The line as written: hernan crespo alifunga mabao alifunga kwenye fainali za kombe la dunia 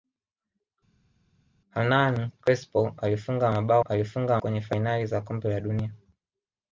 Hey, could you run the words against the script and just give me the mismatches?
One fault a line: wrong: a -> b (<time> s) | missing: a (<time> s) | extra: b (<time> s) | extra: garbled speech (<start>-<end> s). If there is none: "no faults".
no faults